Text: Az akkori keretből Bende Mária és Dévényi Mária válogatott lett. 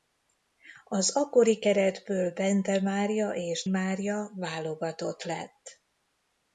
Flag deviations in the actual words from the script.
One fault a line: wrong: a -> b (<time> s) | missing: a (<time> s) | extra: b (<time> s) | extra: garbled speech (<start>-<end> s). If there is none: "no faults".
missing: Dévényi (3.6 s)